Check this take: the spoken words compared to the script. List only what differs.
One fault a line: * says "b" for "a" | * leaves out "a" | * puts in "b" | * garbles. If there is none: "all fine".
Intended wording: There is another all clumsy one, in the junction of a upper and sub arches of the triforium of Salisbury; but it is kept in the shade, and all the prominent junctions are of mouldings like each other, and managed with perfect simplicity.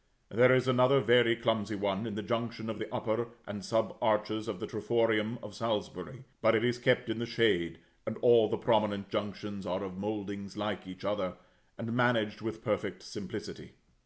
* says "very" for "all"
* says "the" for "a"